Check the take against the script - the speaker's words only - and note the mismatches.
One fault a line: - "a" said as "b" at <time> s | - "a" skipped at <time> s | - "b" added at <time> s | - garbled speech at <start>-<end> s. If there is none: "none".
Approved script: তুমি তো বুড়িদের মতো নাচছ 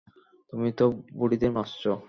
- "মতো" skipped at 1.5 s